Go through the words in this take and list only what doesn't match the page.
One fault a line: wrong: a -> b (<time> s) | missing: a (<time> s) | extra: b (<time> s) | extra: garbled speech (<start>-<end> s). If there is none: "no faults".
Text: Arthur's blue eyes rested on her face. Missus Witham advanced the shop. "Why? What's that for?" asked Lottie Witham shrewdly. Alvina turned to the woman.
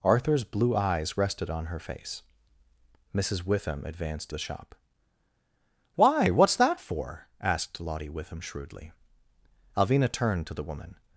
no faults